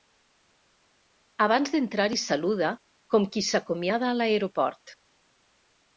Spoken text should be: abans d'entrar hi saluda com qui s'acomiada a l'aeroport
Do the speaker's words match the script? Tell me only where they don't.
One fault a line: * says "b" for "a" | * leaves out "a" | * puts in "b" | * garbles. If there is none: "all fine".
all fine